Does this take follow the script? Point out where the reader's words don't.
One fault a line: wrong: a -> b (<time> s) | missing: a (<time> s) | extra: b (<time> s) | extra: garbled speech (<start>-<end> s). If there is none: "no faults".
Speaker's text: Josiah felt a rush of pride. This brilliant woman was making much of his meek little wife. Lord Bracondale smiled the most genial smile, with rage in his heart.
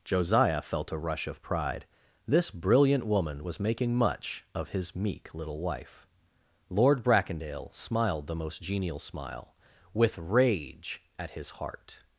wrong: in -> at (11.2 s)